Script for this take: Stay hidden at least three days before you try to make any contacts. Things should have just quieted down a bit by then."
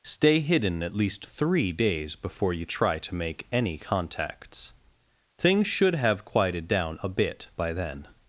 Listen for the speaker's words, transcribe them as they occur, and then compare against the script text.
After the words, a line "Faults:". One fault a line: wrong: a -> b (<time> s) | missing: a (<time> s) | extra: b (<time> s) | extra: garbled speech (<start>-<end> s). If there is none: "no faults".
Stay hidden at least three days before you try to make any contacts. Things should have quieted down a bit by then."
Faults:
missing: just (6.2 s)